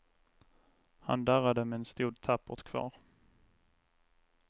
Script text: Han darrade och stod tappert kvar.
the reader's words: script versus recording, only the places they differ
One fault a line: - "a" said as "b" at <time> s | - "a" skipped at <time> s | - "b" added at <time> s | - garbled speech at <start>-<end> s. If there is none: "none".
- "och" said as "men" at 1.6 s